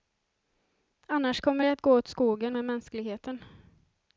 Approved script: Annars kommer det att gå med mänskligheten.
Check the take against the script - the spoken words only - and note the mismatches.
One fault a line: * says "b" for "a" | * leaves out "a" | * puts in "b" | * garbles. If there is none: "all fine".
* puts in "åt skogen"